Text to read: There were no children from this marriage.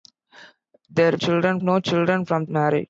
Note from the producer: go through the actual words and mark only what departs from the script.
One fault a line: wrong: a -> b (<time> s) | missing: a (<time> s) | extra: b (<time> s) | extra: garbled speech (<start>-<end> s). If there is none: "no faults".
wrong: were -> children (1.2 s)
missing: this (2.5 s)